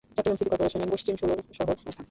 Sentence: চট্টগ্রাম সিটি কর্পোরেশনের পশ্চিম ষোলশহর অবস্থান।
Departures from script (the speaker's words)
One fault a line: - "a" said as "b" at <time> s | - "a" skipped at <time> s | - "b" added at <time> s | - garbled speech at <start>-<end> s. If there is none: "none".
none